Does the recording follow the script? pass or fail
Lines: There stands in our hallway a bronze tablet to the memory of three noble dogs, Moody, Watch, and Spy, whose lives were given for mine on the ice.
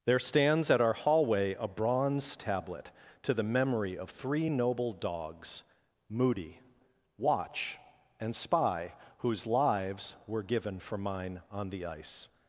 fail